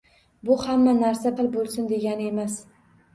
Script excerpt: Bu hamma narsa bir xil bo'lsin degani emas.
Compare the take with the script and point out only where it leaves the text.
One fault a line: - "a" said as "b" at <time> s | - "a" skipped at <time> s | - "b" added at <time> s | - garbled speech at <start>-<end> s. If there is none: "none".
- "bir" skipped at 1.3 s